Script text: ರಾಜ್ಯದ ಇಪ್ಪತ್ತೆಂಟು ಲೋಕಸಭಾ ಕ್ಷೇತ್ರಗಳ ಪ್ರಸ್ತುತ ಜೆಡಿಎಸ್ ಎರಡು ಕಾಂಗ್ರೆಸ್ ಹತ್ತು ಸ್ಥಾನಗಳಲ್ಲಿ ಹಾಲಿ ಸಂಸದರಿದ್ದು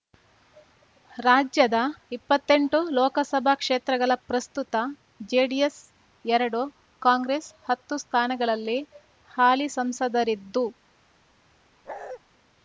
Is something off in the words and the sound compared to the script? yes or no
yes